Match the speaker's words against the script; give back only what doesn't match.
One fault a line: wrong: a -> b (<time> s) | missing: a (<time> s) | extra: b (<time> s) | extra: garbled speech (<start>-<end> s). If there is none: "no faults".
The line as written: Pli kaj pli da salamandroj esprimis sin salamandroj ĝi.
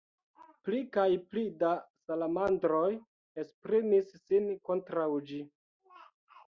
wrong: salamandroj -> kontraŭ (4.7 s)